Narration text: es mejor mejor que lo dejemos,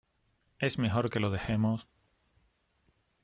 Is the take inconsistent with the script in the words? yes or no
yes